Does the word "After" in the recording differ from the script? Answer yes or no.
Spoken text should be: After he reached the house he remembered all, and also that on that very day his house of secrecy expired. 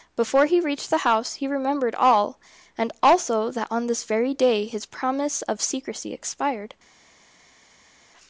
yes